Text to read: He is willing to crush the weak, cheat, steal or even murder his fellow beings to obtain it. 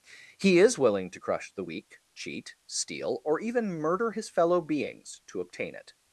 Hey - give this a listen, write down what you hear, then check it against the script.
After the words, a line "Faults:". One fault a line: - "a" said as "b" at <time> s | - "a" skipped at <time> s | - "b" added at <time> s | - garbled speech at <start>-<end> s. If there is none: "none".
He is willing to crush the weak, cheat, steal or even murder his fellow beings to obtain it.
Faults:
none